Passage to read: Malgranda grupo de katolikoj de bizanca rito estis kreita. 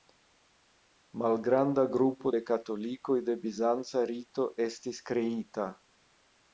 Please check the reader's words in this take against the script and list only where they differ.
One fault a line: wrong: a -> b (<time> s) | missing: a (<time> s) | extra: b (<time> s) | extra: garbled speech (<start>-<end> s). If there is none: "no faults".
no faults